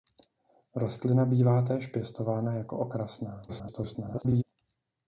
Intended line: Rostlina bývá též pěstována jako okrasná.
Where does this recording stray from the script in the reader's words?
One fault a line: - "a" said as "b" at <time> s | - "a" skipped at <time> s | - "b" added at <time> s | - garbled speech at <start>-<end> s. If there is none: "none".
- garbled speech at 3.5-4.4 s